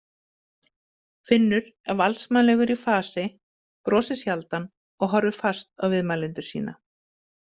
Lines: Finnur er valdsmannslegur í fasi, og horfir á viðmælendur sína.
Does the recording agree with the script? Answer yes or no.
no